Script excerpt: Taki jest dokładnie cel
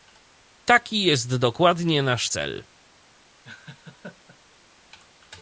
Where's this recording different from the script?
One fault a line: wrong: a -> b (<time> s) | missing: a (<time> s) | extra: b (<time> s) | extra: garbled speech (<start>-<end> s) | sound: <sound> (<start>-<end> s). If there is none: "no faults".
extra: nasz (2.0 s)
sound: laugh (3.4-4.4 s)